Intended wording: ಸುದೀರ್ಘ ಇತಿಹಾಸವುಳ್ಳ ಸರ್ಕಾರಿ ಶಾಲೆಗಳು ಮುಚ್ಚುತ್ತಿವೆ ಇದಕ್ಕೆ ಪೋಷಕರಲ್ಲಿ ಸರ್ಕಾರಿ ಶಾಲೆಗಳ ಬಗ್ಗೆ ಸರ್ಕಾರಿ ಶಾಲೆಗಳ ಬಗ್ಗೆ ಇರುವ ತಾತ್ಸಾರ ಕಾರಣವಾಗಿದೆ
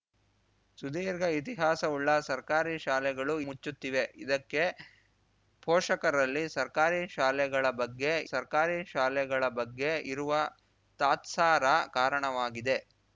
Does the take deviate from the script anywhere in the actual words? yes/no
no